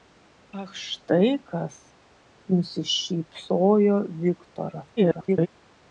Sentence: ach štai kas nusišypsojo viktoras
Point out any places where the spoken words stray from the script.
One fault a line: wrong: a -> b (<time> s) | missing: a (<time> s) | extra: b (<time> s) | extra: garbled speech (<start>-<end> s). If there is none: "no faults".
extra: garbled speech (5.0-5.5 s)